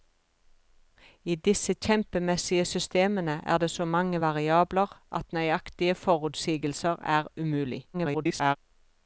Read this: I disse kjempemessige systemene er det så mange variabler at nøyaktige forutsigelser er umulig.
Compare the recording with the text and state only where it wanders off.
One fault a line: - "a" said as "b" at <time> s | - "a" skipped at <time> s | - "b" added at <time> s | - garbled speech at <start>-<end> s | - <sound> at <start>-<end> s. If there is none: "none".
- garbled speech at 7.9-8.6 s